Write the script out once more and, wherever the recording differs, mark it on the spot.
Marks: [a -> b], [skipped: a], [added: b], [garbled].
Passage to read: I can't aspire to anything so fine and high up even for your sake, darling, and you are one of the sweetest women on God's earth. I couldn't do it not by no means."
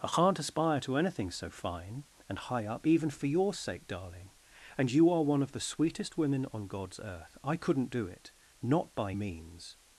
I can't aspire to anything so fine and high up even for your sake, darling, and you are one of the sweetest women on God's earth. I couldn't do it not by [skipped: no] means."